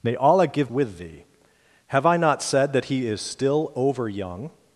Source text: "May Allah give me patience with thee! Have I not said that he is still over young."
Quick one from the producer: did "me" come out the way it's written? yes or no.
no